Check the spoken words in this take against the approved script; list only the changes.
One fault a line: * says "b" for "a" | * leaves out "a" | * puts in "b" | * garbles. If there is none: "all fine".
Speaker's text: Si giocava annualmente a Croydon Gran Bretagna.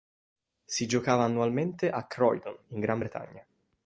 * puts in "in"